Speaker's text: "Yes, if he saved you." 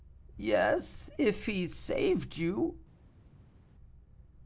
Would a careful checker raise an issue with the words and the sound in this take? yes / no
no